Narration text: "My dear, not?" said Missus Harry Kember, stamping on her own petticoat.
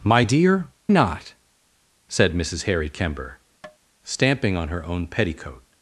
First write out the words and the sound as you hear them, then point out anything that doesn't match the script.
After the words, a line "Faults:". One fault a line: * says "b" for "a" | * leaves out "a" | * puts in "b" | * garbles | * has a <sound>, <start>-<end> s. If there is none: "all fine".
"My dear, not?" said Missus Harry Kember, stamping on her own petticoat.
Faults:
* has a tap, 3.6-3.8 s